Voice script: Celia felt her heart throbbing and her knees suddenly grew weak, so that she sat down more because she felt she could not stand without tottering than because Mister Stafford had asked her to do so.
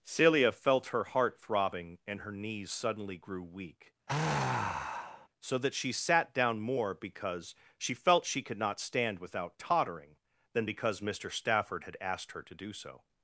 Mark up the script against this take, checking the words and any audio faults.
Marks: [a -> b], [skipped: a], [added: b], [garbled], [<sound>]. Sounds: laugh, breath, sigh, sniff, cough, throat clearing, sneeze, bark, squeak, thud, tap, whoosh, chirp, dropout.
Celia felt her heart throbbing and her knees suddenly grew weak, [sigh] so that she sat down more because she felt she could not stand without tottering than because Mister Stafford had asked her to do so.